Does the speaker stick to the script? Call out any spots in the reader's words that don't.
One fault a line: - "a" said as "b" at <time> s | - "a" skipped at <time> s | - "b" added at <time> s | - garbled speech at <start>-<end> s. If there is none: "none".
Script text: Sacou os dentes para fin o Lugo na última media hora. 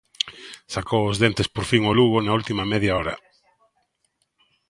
- "para" said as "por" at 1.5 s